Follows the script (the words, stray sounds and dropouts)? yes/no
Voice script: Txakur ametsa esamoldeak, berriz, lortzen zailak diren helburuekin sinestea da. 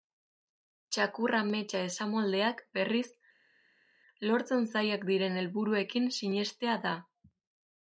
yes